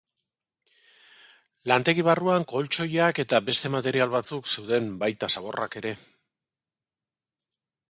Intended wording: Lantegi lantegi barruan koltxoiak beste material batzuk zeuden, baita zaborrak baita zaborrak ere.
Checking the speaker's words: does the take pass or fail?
fail